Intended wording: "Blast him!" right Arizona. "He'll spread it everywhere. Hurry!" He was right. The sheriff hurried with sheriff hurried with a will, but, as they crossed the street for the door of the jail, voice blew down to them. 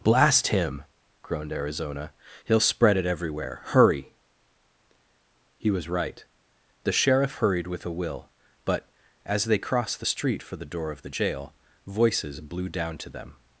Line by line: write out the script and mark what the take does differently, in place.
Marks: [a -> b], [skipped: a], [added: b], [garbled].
"Blast him!" [right -> groaned] Arizona. "He'll spread it everywhere. Hurry!" He was right. The sheriff hurried with [skipped: sheriff hurried with] a will, but, as they crossed the street for the door of the jail, [voice -> voices] blew down to them.